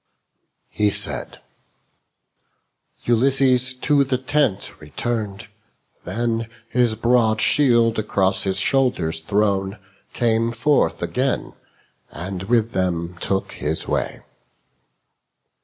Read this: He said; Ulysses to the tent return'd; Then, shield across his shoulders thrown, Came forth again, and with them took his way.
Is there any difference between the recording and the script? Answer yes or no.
yes